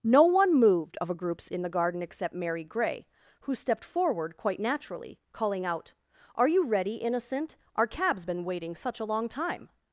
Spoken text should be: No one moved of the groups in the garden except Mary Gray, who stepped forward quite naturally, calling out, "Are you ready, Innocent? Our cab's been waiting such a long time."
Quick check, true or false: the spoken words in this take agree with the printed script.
false